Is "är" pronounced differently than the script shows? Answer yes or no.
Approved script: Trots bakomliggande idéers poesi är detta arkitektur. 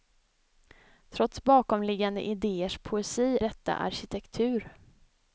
yes